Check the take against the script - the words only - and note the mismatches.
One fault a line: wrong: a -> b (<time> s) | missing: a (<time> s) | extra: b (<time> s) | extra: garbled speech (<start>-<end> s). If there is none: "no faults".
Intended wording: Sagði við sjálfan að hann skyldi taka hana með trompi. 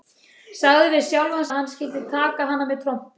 no faults